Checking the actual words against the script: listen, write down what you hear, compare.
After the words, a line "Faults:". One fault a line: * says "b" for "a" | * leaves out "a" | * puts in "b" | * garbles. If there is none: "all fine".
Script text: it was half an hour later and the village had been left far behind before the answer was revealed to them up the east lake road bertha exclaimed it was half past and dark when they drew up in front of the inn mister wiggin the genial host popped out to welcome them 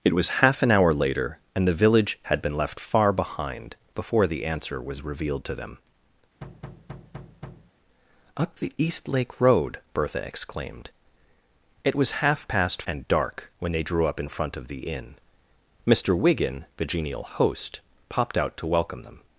it was half an hour later and the village had been left far behind before the answer was revealed to them up the east lake road bertha exclaimed it was half past and dark when they drew up in front of the inn mister wiggin the genial host popped out to welcome them
Faults:
all fine